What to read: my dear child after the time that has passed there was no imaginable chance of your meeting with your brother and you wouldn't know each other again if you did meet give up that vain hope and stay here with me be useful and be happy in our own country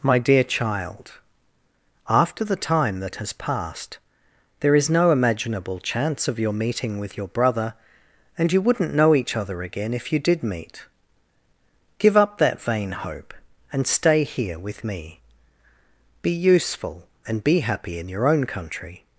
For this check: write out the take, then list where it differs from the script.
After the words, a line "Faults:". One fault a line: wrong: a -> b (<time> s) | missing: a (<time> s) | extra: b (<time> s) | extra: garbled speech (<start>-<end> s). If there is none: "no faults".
my dear child after the time that has passed there is no imaginable chance of your meeting with your brother and you wouldn't know each other again if you did meet give up that vain hope and stay here with me be useful and be happy in your own country
Faults:
wrong: was -> is (4.7 s)
wrong: our -> your (18.1 s)